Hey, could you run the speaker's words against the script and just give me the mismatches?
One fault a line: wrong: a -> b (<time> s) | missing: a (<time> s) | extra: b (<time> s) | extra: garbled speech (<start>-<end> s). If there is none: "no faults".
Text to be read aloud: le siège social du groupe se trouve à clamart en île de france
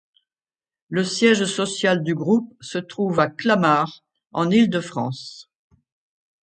no faults